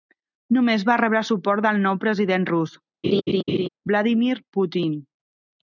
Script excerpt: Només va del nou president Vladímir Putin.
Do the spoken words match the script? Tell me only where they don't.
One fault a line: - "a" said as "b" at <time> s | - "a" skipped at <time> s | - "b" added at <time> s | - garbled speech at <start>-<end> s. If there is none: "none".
- "rebre suport" added at 1.0 s
- "rus" added at 2.5 s